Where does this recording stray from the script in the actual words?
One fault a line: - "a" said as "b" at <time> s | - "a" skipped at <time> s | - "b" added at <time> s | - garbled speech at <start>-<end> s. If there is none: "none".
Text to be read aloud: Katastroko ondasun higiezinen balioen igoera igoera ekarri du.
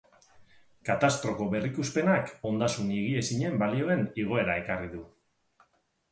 - "berrikuspenak" added at 1.5 s
- "igoera" skipped at 4.6 s